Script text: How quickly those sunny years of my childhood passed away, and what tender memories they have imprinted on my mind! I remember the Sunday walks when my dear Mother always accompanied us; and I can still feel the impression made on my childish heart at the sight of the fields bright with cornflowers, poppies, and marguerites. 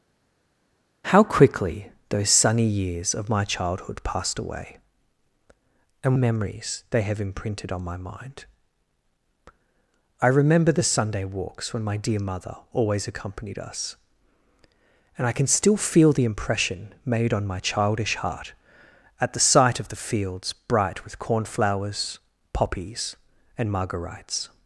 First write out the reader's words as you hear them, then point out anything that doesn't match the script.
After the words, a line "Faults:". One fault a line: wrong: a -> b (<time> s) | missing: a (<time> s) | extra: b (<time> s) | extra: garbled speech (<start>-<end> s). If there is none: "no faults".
How quickly those sunny years of my childhood passed away, and memories they have imprinted on my mind! I remember the Sunday walks when my dear Mother always accompanied us; and I can still feel the impression made on my childish heart at the sight of the fields bright with cornflowers, poppies, and marguerites.
Faults:
missing: what tender (6.2 s)